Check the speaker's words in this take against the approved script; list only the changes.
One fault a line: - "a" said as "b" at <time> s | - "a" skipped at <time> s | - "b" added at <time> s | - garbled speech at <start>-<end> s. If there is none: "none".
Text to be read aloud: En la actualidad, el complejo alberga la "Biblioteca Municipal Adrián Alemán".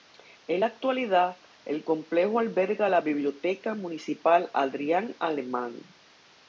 none